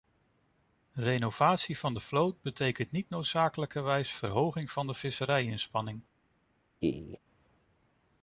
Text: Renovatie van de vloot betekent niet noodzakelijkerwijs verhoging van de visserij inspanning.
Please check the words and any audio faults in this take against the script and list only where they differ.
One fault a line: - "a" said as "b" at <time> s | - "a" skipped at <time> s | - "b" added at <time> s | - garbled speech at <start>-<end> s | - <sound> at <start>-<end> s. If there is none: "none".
- laugh at 6.8-7.2 s